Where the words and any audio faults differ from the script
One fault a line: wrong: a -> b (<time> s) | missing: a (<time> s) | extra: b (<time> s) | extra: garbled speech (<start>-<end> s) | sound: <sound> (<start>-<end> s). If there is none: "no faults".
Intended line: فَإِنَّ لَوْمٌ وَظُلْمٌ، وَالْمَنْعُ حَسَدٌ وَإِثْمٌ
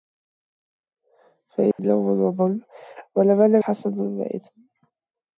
sound: dropout (1.7-1.8 s)